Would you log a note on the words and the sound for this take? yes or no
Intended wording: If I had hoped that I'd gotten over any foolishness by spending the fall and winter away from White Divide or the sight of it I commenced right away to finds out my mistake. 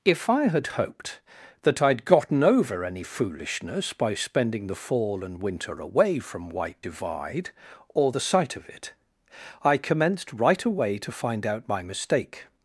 yes